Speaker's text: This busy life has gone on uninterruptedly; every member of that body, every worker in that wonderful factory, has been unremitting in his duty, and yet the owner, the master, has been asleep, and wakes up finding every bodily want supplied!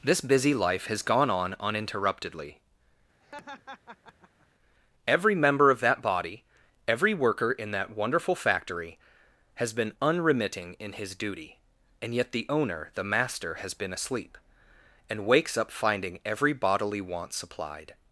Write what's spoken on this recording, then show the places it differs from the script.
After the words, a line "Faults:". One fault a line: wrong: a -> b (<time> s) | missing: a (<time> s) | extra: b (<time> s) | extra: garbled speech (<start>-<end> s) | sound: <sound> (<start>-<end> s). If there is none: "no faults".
This busy life has gone on uninterruptedly; every member of that body, every worker in that wonderful factory, has been unremitting in his duty, and yet the owner, the master, has been asleep, and wakes up finding every bodily want supplied!
Faults:
sound: laugh (3.2-4.5 s)